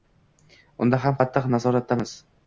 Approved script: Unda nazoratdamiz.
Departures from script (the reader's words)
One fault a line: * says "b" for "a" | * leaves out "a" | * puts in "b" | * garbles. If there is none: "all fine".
* puts in "ham qattiq"